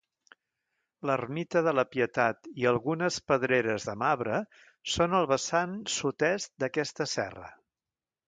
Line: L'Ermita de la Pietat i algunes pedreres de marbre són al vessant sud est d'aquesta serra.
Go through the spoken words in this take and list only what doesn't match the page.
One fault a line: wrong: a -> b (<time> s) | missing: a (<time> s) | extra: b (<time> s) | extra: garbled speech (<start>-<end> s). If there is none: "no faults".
no faults